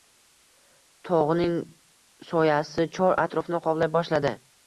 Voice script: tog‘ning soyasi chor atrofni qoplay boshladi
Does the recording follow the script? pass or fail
pass